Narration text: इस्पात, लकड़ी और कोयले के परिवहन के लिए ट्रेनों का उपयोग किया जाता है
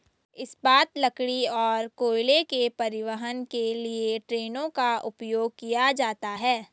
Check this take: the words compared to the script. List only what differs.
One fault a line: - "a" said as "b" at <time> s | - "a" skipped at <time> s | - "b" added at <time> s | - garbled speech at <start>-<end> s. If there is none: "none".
none